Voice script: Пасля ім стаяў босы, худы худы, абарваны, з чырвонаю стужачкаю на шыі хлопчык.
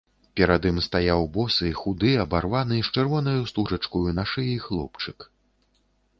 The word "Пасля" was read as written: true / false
false